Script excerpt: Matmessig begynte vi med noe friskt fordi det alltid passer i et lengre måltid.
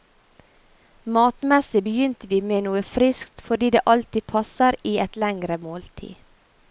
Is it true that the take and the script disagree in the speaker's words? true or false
false